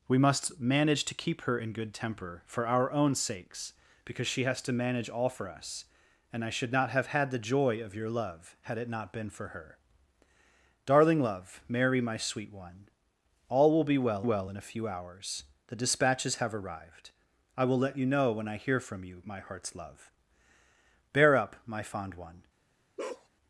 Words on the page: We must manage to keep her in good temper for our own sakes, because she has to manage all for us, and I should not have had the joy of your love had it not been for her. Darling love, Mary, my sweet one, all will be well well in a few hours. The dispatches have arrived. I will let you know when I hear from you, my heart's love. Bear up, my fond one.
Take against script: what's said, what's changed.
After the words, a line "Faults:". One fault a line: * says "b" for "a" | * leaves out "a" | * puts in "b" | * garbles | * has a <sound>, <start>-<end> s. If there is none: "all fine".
We must manage to keep her in good temper for our own sakes, because she has to manage all for us, and I should not have had the joy of your love had it not been for her. Darling love, Mary, my sweet one, all will be well well in a few hours. The dispatches have arrived. I will let you know when I hear from you, my heart's love. Bear up, my fond one.
Faults:
* has a bark, 23.0-23.3 s